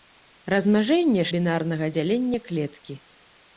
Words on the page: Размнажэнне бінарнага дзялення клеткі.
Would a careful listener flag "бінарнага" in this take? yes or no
no